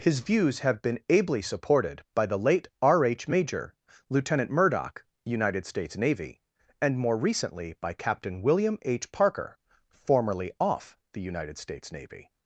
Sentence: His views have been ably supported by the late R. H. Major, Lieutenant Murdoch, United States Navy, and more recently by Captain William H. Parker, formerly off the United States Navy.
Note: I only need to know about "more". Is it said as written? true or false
true